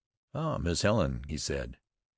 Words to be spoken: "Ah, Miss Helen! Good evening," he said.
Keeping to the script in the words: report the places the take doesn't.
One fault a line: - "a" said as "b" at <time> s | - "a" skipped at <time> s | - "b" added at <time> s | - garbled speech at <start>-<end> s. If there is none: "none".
- "Good evening" skipped at 1.2 s